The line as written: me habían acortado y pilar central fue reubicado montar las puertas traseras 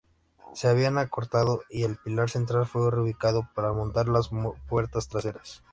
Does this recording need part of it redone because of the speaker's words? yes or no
yes